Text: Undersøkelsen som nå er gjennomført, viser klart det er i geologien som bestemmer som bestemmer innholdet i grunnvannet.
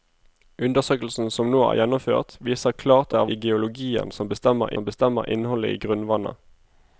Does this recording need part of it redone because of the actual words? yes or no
no